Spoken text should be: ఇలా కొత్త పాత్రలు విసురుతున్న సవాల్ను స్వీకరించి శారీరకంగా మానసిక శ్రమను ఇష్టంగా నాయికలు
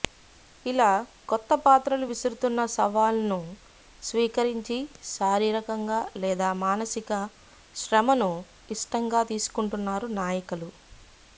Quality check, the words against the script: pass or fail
fail